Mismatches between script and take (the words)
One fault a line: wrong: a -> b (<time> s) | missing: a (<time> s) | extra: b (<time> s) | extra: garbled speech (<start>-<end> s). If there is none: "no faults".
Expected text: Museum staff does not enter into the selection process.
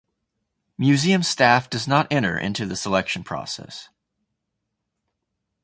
no faults